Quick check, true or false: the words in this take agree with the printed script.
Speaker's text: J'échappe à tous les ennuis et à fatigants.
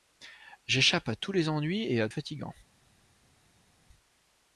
true